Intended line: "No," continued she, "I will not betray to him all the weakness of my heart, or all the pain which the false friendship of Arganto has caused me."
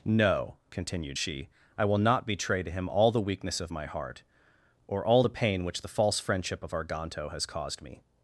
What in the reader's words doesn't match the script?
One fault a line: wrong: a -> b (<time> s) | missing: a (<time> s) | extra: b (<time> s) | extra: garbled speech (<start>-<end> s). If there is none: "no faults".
no faults